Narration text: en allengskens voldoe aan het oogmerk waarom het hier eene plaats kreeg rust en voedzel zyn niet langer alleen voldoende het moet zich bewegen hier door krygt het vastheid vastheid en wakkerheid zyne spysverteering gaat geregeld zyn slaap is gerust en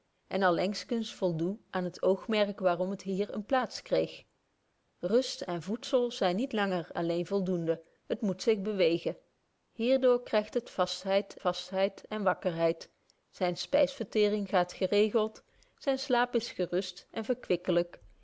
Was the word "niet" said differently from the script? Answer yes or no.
no